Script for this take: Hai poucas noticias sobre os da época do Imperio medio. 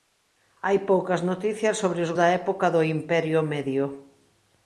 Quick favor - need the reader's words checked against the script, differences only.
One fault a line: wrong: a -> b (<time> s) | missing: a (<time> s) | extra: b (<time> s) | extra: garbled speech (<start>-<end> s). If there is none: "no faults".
no faults